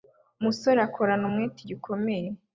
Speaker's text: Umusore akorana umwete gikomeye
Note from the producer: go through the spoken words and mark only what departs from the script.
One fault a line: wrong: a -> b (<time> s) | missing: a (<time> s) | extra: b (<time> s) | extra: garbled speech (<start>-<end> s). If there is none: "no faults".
no faults